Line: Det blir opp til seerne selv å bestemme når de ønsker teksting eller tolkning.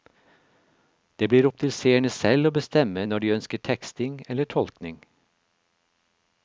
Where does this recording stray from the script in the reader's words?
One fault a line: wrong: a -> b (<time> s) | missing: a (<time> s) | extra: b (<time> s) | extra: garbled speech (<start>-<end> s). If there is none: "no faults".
no faults